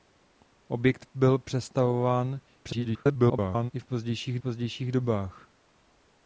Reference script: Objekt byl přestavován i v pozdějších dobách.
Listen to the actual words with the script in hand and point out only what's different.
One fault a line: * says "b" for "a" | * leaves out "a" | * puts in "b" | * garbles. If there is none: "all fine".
* garbles
* puts in "pozdějších"